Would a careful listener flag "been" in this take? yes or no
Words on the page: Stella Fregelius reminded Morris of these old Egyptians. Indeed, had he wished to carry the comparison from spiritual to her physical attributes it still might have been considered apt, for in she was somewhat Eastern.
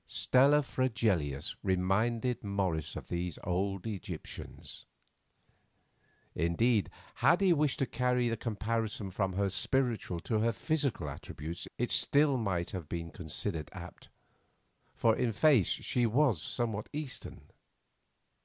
no